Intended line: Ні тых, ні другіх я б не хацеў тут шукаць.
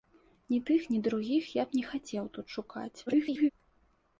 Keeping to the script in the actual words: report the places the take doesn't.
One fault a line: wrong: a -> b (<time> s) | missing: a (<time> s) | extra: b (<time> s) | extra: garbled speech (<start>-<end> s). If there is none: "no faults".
extra: garbled speech (3.1-3.5 s)